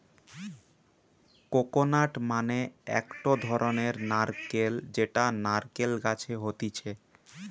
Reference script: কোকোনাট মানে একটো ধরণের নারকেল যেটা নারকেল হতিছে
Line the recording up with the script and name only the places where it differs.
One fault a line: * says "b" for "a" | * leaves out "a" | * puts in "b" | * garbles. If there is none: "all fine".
* puts in "গাছে"